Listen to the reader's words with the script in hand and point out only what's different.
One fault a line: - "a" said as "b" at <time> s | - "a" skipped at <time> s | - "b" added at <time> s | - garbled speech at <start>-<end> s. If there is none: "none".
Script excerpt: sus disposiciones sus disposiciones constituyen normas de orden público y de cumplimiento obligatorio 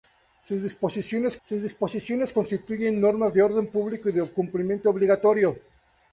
none